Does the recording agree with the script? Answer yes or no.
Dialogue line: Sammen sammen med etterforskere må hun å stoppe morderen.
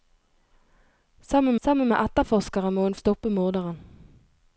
yes